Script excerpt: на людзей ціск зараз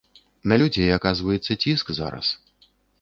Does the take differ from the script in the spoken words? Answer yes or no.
yes